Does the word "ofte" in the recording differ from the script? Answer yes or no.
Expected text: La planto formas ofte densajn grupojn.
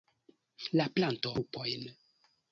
yes